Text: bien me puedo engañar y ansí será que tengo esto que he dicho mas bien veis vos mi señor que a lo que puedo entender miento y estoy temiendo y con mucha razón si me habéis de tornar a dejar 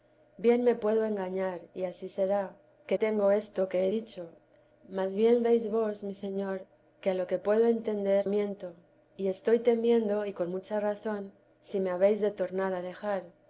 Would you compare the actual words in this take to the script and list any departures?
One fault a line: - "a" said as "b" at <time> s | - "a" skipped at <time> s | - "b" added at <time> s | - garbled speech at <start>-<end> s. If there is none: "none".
none